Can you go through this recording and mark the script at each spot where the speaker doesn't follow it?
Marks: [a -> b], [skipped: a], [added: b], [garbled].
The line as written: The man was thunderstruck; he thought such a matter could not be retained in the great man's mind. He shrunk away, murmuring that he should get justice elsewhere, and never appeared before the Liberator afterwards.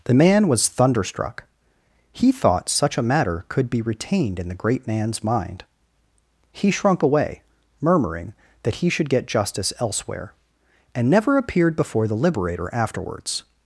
The man was thunderstruck; he thought such a matter could [skipped: not] be retained in the great man's mind. He shrunk away, murmuring that he should get justice elsewhere, and never appeared before the Liberator afterwards.